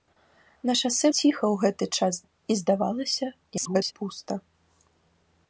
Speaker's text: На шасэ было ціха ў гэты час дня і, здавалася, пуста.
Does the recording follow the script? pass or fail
fail